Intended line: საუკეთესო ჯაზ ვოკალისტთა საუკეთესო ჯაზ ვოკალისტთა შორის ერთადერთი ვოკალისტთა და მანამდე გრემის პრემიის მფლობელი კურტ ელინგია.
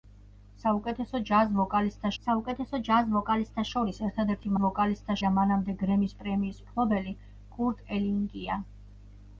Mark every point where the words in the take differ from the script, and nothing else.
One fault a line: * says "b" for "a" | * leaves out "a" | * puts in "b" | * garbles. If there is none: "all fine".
all fine